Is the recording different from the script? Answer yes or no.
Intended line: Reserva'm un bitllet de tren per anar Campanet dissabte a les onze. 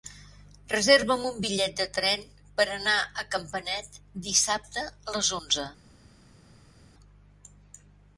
yes